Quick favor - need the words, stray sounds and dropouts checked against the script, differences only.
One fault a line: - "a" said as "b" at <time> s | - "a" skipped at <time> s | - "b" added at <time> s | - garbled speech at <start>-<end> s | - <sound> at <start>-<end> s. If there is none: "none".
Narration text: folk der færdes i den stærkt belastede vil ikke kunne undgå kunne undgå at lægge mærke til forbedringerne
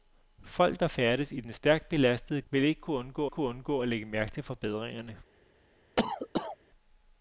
- cough at 6.0-6.6 s